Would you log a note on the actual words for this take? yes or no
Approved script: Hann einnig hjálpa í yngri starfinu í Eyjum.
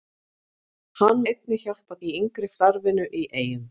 no